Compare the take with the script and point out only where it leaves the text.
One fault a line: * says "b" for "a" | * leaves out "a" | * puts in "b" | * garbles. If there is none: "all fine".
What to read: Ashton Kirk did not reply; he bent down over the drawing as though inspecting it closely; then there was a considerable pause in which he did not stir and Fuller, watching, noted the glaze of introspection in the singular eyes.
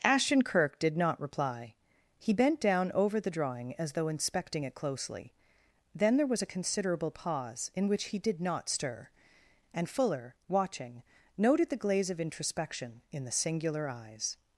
all fine